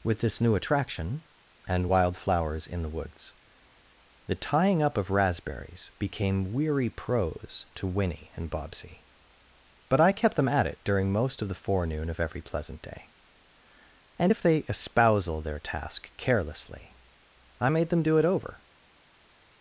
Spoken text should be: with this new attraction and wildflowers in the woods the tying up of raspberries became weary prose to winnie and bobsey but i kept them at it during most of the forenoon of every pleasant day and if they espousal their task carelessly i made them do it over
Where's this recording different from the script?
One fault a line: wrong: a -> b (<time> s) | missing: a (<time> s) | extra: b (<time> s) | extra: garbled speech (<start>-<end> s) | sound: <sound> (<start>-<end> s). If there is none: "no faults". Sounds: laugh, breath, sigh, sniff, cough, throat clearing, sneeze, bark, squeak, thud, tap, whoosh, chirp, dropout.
no faults